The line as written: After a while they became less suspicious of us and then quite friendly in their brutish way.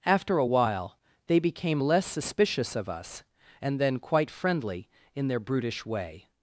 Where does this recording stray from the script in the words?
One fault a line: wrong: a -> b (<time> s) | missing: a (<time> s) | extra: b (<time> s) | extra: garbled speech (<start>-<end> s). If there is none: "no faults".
no faults